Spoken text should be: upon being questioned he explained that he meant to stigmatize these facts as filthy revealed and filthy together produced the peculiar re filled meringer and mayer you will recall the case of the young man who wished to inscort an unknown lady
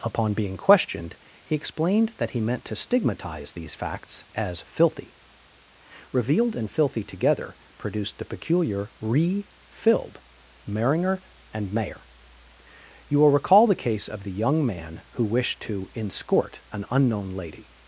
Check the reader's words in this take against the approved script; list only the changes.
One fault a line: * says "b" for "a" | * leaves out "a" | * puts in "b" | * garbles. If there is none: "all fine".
all fine